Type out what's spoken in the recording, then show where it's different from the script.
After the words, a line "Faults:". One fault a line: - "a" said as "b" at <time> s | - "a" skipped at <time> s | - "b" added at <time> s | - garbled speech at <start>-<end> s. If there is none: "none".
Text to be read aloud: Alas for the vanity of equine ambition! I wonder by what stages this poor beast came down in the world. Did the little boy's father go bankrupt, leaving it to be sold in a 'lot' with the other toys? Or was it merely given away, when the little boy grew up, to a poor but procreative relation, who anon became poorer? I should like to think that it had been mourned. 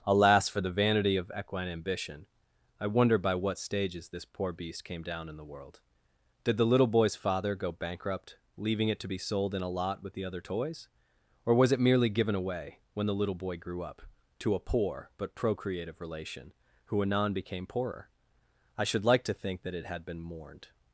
Alas for the vanity of equine ambition! I wonder by what stages this poor beast came down in the world. Did the little boy's father go bankrupt, leaving it to be sold in a 'lot' with the other toys? Or was it merely given away, when the little boy grew up, to a poor but procreative relation, who anon became poorer? I should like to think that it had been mourned.
Faults:
none